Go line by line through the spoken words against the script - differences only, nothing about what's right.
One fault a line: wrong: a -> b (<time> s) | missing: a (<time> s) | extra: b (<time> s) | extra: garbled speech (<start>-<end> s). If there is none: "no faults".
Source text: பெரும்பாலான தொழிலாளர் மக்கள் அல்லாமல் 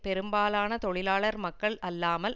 no faults